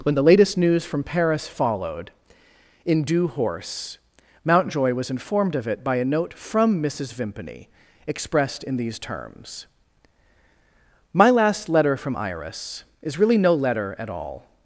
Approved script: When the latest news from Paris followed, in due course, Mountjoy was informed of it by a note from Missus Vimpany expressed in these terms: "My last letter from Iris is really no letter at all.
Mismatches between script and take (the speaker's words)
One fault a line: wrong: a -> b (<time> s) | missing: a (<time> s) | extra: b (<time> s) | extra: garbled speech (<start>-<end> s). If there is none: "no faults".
wrong: course -> horse (3.3 s)